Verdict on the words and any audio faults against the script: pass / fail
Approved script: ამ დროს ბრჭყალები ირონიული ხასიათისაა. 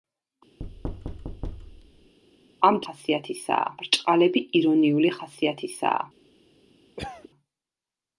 fail